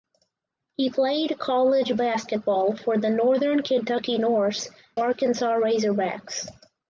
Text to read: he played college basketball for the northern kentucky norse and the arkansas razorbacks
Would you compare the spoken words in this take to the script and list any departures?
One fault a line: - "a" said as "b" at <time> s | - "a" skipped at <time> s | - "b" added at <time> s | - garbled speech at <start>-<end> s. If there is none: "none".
- "and the" skipped at 4.7 s